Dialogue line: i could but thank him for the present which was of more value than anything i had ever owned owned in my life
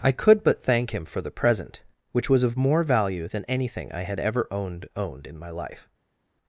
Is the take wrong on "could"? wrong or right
right